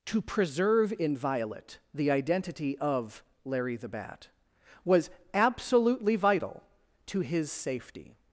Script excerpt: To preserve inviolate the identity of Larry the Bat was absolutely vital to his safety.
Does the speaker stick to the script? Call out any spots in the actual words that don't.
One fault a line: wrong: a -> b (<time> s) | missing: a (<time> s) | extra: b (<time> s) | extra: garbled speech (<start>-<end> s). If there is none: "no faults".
no faults